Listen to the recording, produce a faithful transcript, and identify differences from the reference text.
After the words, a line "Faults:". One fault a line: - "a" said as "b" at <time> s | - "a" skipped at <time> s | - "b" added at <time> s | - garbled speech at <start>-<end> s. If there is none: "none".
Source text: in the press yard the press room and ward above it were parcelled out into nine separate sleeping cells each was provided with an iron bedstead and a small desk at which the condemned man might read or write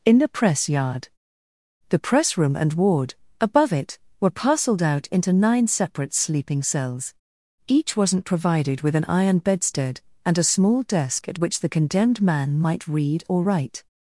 in the press yard the press room and ward above it were parcelled out into nine separate sleeping cells each wasn't provided with an iron bedstead and a small desk at which the condemned man might read or write
Faults:
- "was" said as "wasn't" at 8.0 s